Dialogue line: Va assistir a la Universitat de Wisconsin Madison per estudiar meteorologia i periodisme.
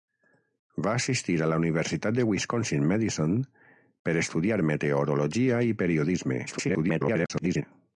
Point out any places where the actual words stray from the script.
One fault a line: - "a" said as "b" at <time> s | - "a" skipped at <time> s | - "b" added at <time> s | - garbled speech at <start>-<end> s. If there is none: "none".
- garbled speech at 6.5-7.6 s